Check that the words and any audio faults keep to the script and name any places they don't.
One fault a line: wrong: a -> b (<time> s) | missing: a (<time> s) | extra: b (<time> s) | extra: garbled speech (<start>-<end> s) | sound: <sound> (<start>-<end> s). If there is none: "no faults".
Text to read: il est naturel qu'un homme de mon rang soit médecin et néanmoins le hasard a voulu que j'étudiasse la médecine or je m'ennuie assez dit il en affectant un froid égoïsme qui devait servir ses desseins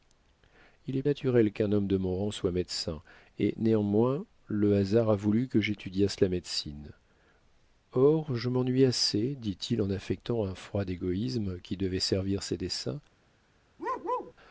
sound: bark (13.8-14.3 s)